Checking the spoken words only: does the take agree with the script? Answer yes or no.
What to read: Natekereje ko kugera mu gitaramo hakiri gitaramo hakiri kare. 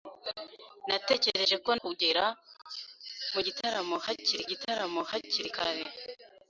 yes